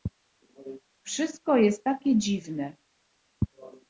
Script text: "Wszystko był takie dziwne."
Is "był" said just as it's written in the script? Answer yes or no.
no